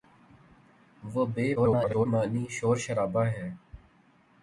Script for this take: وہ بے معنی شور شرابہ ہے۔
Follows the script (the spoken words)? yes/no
no